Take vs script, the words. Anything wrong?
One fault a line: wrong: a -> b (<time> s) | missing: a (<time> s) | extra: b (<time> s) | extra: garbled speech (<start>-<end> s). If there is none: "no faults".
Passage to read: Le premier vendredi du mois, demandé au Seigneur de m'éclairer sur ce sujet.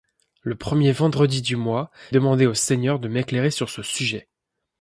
no faults